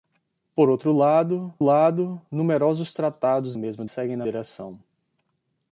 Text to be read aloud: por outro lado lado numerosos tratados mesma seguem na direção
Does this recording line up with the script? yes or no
yes